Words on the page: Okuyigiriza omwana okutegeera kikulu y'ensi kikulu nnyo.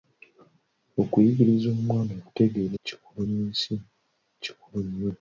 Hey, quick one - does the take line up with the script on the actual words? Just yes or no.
yes